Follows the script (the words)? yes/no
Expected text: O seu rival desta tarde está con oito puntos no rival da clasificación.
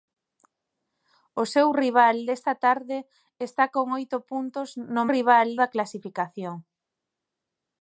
yes